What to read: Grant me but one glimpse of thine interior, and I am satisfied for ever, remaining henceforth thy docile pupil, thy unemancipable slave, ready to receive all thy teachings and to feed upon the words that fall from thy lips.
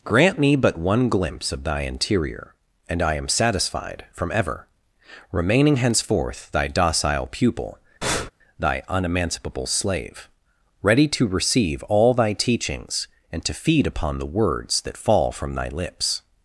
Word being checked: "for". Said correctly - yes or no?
no